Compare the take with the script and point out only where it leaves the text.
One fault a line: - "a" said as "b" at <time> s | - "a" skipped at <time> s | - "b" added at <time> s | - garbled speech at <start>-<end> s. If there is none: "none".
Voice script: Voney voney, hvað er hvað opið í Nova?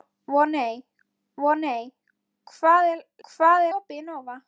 none